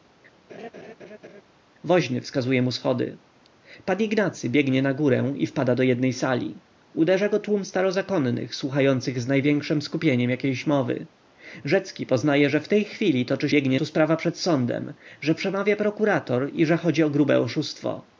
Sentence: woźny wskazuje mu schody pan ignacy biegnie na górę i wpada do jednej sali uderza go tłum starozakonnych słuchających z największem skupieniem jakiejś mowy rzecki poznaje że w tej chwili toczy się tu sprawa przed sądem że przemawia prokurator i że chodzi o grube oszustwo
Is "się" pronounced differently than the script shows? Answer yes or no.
yes